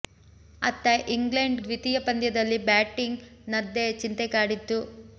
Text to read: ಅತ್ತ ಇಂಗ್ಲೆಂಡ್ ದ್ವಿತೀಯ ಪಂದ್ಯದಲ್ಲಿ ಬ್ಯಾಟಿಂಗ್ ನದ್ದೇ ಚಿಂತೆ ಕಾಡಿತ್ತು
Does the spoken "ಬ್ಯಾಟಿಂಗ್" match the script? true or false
true